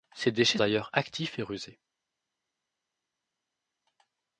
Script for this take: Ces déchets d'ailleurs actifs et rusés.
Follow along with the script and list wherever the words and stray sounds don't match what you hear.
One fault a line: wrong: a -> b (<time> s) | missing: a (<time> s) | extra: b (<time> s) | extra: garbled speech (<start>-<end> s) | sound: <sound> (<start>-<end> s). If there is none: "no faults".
no faults